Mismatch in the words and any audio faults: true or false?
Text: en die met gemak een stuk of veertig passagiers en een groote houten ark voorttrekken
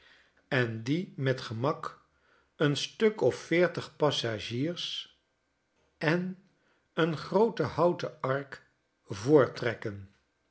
false